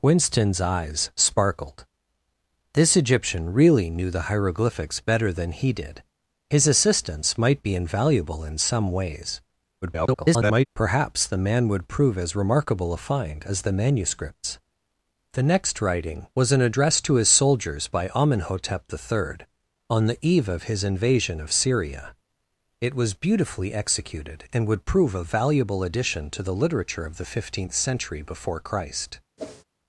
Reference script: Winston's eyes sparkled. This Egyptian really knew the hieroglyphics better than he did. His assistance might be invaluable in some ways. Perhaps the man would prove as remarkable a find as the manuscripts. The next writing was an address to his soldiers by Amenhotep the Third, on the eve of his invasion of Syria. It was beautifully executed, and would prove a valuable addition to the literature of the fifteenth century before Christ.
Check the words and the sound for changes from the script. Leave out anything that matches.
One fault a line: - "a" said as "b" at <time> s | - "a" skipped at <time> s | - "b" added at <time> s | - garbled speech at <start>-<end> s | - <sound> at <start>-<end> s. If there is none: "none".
- garbled speech at 9.8-10.7 s
- whoosh at 29.4-29.6 s